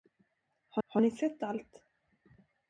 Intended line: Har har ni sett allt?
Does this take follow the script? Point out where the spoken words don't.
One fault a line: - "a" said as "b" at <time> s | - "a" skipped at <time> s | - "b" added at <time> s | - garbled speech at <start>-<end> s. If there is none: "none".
none